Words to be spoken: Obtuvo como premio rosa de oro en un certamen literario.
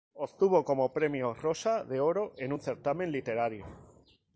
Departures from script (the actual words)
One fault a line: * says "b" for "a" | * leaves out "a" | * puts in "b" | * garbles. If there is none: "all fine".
all fine